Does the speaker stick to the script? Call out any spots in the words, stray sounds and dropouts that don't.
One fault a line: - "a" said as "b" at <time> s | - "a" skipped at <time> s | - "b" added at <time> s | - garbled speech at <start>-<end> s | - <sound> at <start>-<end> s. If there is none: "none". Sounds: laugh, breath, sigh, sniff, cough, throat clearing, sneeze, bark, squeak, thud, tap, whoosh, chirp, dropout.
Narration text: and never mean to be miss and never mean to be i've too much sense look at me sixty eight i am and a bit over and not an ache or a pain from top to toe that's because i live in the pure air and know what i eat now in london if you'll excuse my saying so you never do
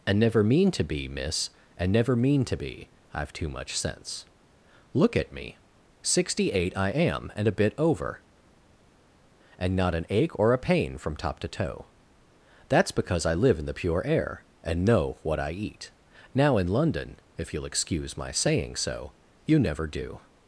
none